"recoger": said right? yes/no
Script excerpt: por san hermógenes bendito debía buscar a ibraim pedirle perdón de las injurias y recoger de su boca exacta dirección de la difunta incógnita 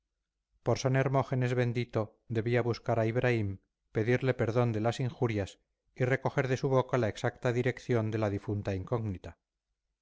yes